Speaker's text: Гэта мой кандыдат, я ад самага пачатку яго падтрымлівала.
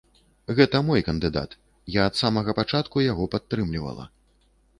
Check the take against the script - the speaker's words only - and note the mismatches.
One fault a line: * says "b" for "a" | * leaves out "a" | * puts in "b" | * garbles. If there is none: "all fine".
all fine